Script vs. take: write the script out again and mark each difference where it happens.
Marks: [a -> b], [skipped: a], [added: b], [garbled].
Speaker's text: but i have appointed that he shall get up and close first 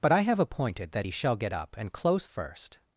but i have appointed that he shall get up and close first